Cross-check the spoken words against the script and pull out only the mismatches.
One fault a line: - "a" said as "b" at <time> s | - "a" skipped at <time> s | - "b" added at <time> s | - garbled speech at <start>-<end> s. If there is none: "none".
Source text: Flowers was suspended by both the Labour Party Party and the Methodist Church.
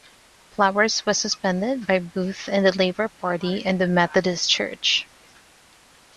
- "Party" skipped at 3.6 s